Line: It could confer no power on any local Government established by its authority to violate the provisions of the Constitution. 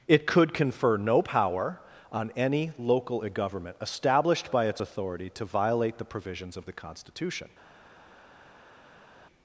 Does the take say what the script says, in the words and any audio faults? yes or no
yes